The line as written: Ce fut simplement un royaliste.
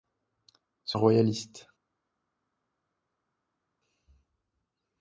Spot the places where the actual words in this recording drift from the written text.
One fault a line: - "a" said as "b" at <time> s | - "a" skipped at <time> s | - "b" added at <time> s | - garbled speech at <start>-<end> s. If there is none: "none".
- "fut simplement" skipped at 1.0 s